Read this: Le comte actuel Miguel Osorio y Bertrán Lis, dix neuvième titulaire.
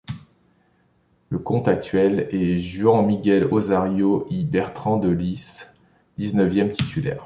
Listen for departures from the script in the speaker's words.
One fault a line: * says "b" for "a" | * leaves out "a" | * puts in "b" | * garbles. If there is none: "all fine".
* puts in "est Juan"
* puts in "de"